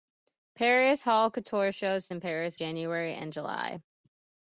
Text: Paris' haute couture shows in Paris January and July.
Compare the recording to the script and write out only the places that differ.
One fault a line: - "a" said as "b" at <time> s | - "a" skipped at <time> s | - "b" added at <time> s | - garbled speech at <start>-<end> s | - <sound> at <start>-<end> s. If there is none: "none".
none